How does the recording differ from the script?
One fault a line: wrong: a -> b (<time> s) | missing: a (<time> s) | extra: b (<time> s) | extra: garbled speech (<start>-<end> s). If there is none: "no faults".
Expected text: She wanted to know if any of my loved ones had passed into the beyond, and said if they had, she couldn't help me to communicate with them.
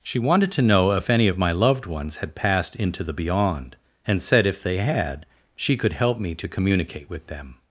wrong: couldn't -> could (5.8 s)